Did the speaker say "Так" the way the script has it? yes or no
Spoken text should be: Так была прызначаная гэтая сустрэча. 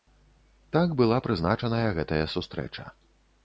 yes